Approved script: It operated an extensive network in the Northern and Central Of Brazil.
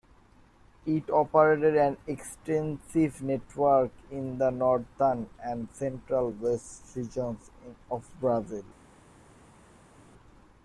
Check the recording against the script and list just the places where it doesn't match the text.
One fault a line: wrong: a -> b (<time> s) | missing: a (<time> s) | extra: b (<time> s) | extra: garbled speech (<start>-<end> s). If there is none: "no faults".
extra: West regions (6.3 s)